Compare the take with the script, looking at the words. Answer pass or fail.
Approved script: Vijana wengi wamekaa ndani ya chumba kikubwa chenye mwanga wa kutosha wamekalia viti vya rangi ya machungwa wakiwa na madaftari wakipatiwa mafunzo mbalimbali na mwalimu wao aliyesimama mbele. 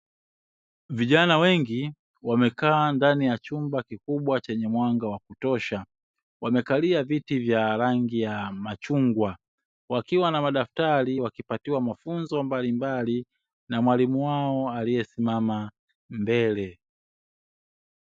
pass